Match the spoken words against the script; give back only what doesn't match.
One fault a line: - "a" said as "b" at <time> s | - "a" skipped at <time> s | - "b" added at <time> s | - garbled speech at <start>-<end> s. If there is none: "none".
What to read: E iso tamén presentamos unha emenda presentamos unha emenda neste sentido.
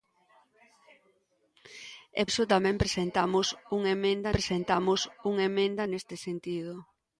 none